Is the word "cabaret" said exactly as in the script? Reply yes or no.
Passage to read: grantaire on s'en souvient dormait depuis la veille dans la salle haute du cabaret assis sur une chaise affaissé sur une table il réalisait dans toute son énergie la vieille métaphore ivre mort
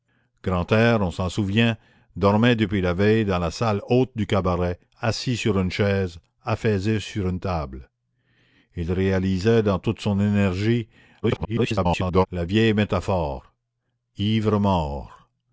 yes